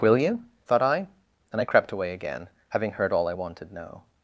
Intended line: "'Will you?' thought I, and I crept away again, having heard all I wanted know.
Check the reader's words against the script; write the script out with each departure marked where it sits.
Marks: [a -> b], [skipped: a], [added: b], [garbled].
"'Will you?' thought I, and I crept away again, having heard all I wanted know.